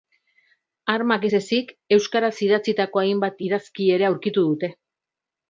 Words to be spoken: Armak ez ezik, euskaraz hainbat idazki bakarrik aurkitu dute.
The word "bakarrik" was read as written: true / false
false